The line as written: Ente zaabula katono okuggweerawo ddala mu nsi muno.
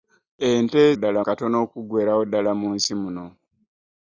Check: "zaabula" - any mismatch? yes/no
yes